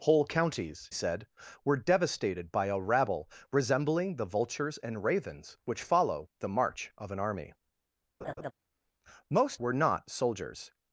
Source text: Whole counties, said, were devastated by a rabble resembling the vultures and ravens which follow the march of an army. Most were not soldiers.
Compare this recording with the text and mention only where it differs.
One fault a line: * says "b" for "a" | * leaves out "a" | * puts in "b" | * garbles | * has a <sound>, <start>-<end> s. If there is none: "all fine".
* has a laugh, 8.2-8.5 s